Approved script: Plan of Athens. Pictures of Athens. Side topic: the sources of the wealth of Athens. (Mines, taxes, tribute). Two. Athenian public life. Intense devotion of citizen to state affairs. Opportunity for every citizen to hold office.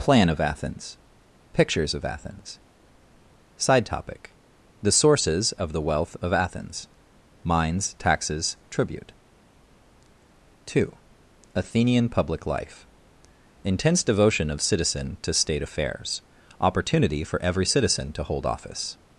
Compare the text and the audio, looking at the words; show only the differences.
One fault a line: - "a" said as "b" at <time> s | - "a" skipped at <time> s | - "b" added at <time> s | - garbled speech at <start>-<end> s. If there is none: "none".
none